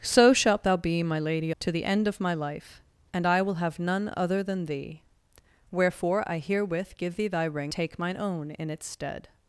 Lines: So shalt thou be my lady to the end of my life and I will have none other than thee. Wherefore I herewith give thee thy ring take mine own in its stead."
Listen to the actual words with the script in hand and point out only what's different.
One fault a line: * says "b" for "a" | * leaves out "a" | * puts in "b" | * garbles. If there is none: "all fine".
all fine